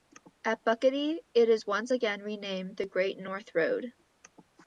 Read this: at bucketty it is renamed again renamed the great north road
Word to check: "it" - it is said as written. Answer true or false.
true